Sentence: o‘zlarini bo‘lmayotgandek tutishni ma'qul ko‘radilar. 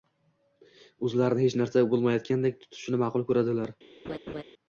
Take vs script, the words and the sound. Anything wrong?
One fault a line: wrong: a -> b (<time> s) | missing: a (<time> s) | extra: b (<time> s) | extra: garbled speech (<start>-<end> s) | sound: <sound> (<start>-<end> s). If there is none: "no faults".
extra: hech narsa (1.4 s)
sound: laugh (4.0-4.4 s)